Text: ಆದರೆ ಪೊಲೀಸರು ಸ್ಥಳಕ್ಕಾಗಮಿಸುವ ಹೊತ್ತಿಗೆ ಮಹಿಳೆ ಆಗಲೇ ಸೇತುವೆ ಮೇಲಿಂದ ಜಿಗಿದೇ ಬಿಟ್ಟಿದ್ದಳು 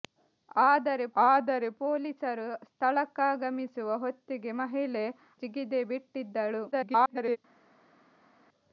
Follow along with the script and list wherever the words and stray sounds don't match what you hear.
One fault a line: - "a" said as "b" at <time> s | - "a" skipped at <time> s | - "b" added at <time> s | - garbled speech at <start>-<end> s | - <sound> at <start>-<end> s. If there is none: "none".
- "ಆದರೆ" added at 1.2 s
- "ಆಗಲೇ ಸೇತುವೆ ಮೇಲಿಂದ" skipped at 5.0 s
- garbled speech at 6.7-7.4 s